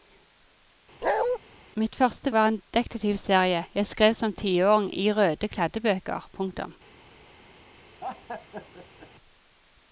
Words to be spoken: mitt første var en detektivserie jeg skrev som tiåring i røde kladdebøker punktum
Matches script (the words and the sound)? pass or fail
fail